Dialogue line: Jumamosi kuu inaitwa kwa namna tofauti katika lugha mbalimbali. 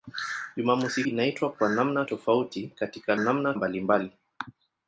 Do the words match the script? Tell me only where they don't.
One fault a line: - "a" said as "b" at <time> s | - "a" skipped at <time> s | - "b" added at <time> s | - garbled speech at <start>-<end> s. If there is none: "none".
- "kuu" skipped at 1.0 s
- "lugha" said as "namna" at 3.2 s